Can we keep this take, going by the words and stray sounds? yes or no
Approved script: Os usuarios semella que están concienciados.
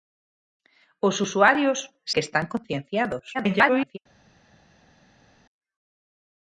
no